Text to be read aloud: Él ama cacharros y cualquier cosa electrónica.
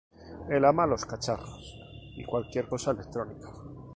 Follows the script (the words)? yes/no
no